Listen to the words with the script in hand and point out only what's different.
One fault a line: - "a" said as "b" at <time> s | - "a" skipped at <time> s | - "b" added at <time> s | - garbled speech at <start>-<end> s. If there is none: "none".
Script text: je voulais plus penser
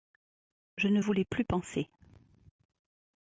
- "ne" added at 0.9 s